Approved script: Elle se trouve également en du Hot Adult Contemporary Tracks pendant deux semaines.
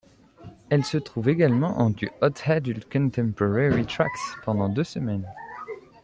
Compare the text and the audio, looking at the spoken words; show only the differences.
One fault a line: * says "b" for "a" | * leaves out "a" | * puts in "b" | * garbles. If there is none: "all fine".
all fine